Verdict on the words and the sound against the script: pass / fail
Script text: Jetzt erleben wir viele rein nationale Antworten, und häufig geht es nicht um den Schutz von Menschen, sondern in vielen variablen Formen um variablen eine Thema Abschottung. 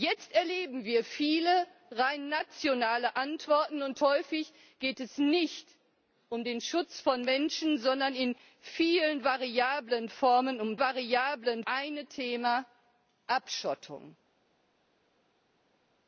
pass